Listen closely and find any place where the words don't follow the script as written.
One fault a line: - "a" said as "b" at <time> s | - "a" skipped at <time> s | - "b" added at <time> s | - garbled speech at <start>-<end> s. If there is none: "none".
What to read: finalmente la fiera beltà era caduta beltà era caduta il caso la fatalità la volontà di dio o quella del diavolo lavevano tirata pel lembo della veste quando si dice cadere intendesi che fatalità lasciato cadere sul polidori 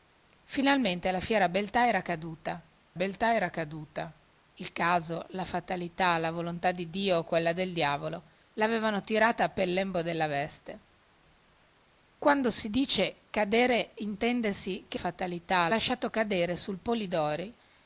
none